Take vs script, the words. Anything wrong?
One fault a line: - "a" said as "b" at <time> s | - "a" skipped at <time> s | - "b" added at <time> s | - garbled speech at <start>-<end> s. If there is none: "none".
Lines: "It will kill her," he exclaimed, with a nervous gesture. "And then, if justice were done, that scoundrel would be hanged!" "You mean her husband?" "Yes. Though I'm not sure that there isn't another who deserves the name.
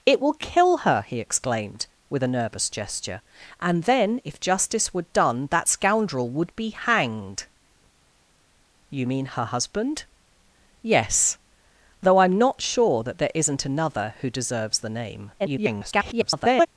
- garbled speech at 15.4-16.7 s